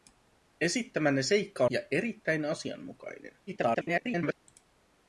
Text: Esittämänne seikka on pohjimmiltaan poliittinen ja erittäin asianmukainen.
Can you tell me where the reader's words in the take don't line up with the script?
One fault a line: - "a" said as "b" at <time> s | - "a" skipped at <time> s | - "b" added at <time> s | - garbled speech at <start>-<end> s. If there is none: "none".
- "on pohjimmiltaan poliittinen" skipped at 1.6 s
- garbled speech at 3.5-4.4 s